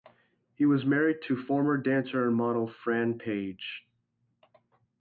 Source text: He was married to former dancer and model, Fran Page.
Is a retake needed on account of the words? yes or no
no